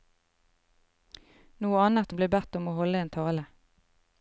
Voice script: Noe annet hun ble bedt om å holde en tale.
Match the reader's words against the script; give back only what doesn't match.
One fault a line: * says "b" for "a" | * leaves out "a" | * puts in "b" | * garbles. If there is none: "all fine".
all fine